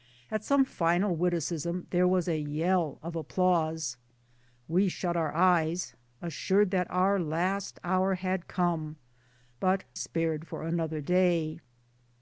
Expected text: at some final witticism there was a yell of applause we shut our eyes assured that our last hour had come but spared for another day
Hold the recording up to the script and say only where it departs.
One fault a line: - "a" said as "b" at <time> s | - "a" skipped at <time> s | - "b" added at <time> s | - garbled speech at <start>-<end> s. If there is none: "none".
none